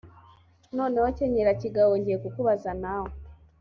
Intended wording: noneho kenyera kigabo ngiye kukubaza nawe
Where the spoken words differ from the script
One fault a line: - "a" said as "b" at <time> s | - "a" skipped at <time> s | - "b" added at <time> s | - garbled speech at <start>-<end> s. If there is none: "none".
none